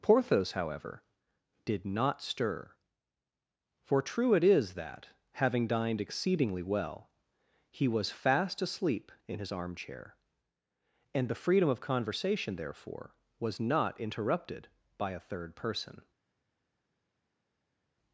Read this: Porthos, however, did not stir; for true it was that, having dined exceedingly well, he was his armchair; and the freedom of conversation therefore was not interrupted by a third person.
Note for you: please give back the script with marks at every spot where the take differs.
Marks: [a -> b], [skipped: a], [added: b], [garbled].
Porthos, however, did not stir; for true it [was -> is] that, having dined exceedingly well, he was [added: fast asleep in] his armchair; and the freedom of conversation therefore was not interrupted by a third person.